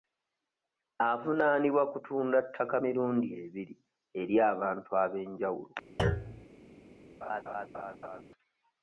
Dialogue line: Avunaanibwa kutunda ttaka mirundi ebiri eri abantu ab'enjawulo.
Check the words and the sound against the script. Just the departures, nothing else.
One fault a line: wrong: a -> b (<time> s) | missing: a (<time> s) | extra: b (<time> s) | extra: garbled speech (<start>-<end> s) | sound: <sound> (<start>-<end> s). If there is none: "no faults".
sound: thud (6.0-6.5 s)
sound: laugh (7.2-8.2 s)